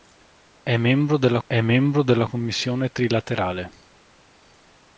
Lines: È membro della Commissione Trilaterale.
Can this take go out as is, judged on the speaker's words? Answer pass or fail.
fail